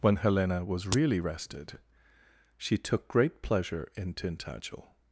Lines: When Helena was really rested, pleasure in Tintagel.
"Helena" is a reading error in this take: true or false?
false